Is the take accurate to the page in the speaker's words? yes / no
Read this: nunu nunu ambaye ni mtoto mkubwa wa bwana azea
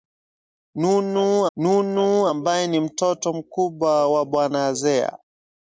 yes